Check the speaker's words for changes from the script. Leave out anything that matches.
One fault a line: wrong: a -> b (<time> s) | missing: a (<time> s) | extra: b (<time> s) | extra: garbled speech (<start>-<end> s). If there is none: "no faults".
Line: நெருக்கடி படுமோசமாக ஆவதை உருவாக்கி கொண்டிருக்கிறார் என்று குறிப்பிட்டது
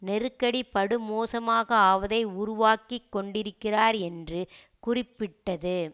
no faults